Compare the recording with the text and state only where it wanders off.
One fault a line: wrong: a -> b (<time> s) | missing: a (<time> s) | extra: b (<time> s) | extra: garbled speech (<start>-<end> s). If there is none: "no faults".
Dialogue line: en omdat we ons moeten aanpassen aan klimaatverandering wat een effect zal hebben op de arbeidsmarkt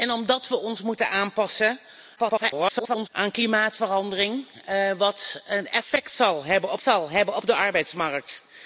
extra: garbled speech (2.2-3.1 s)
extra: zal hebben op (6.8 s)